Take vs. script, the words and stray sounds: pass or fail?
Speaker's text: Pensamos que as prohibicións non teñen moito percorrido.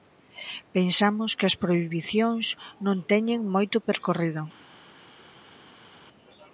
pass